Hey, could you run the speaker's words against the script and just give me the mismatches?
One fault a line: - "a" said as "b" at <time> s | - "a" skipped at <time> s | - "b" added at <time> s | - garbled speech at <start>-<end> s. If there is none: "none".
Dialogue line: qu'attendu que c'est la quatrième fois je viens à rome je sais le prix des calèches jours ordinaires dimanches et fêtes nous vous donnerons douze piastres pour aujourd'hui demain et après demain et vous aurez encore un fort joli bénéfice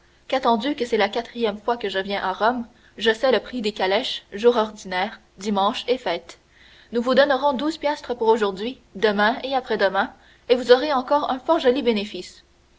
- "que" added at 1.8 s